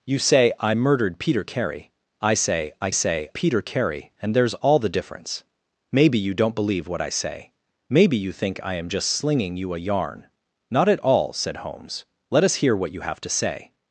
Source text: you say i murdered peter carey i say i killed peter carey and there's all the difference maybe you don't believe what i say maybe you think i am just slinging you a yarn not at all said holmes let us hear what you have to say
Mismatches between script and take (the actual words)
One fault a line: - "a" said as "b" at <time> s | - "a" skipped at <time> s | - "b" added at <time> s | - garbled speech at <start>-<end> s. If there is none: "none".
- "killed" said as "say" at 2.9 s